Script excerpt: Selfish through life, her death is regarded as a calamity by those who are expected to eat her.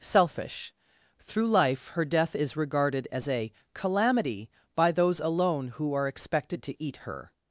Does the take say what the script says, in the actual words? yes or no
no